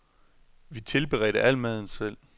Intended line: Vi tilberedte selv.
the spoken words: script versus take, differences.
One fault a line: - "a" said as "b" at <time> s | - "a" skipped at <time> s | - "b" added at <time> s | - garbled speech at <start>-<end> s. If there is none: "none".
- "al maden" added at 1.4 s